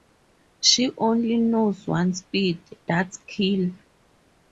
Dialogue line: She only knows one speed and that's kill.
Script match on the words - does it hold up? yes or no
no